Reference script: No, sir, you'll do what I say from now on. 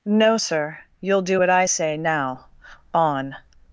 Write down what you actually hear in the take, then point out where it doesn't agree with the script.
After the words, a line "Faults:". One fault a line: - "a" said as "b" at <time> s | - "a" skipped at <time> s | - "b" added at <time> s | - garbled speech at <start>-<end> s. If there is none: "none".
No, sir, you'll do what I say now on.
Faults:
- "from" skipped at 2.0 s